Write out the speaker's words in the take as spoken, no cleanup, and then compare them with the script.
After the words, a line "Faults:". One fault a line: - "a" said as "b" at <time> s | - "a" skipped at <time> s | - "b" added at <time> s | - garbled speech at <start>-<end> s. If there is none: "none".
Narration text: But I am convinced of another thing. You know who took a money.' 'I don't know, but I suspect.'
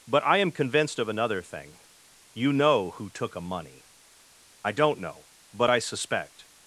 But I am convinced of another thing. You know who took a money.' 'I don't know, but I suspect.'
Faults:
none